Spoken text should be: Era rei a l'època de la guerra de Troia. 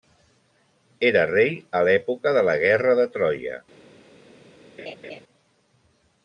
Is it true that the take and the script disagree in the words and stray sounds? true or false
true